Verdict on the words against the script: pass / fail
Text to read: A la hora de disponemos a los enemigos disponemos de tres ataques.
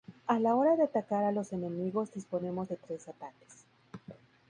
fail